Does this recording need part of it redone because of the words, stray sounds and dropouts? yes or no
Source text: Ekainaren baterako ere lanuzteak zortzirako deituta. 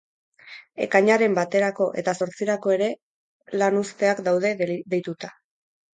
yes